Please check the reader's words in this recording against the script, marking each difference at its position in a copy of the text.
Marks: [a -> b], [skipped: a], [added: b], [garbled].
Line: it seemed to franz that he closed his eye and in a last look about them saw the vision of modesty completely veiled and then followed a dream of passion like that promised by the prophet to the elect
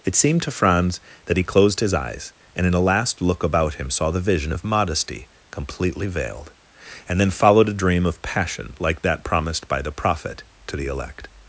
it seemed to franz that he closed his [eye -> eyes] and in a last look about [them -> him] saw the vision of modesty completely veiled and then followed a dream of passion like that promised by the prophet to the elect